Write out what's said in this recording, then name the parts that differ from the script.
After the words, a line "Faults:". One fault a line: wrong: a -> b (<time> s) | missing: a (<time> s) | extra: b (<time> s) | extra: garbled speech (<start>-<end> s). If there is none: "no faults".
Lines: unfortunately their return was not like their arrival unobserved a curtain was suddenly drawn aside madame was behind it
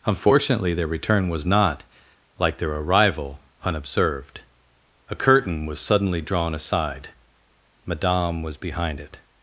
unfortunately their return was not like their arrival unobserved a curtain was suddenly drawn aside madame was behind it
Faults:
no faults